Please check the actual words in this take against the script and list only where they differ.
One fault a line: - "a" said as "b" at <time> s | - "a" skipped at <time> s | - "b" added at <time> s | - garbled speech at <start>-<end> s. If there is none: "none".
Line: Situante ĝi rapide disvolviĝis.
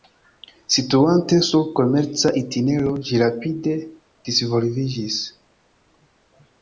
- "sur komerca itinero" added at 1.5 s